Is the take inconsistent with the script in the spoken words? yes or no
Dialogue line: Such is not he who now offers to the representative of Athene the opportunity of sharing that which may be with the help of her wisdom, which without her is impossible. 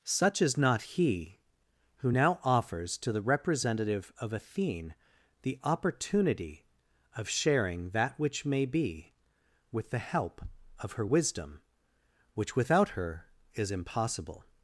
no